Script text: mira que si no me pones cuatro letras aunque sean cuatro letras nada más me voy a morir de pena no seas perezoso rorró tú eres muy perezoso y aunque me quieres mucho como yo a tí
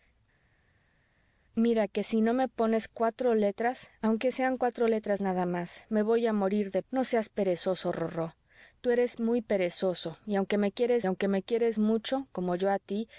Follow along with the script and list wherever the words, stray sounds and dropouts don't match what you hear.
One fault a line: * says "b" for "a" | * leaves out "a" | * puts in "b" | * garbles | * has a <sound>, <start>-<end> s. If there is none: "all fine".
* leaves out "pena"
* puts in "aunque me quieres"